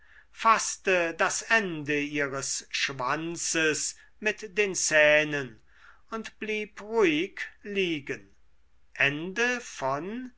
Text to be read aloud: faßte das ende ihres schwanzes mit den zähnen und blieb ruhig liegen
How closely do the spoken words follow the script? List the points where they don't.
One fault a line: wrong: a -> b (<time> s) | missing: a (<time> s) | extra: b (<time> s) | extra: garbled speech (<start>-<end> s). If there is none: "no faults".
no faults